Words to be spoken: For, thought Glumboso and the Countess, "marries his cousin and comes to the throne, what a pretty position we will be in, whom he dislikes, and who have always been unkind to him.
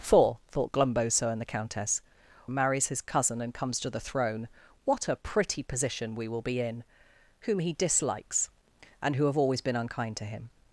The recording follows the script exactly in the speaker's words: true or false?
true